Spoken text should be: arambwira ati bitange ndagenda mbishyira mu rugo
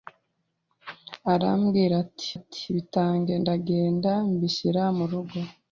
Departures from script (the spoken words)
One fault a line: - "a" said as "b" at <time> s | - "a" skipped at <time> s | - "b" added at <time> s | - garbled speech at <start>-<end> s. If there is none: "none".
- "ati" added at 2.4 s